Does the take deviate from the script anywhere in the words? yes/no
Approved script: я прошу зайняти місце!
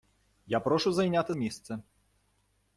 no